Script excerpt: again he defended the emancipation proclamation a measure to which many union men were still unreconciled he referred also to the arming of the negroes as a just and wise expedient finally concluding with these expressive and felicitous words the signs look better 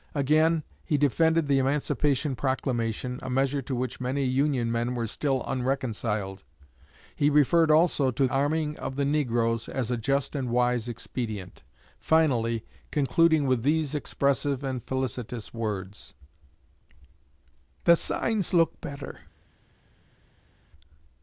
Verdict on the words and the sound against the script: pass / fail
fail